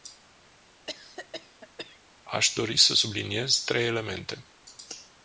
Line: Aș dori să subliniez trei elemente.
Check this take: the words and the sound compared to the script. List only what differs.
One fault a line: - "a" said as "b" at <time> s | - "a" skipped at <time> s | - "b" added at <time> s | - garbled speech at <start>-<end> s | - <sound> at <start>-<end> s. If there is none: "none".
- cough at 0.9-2.0 s